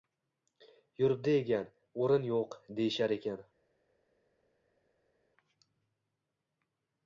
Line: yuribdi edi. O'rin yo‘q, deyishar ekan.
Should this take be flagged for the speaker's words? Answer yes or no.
yes